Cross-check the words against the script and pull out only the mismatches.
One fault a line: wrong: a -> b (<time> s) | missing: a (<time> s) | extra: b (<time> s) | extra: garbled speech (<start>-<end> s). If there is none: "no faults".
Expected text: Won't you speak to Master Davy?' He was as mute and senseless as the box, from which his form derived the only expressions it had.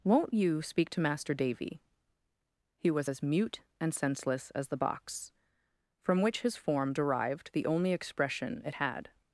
wrong: expressions -> expression (7.9 s)